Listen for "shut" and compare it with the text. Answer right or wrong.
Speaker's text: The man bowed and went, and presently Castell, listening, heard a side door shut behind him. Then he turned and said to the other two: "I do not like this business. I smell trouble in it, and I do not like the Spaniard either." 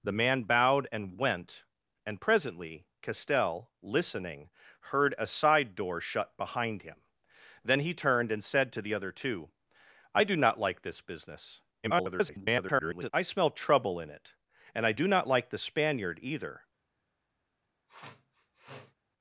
right